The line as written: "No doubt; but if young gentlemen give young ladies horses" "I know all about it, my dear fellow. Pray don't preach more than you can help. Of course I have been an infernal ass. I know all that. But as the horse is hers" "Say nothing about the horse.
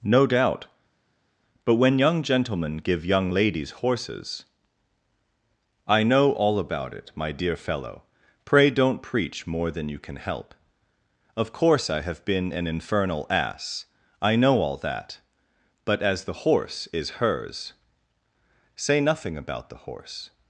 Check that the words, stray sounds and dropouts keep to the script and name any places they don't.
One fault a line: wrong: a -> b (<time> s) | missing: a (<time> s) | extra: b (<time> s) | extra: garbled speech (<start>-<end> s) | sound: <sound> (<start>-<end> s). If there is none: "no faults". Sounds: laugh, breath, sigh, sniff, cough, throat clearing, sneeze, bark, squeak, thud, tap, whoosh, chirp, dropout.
wrong: if -> when (1.7 s)